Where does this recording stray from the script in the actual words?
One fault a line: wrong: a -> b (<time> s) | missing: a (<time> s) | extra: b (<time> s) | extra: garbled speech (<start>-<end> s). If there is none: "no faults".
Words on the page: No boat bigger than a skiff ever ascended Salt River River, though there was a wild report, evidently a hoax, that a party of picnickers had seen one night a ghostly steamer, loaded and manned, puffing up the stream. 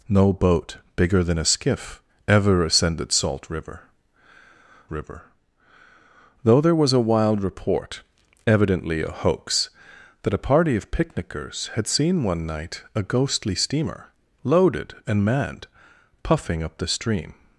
no faults